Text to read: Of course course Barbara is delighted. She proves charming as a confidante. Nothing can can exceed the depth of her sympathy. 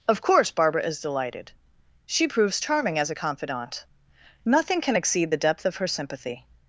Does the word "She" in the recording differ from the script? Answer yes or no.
no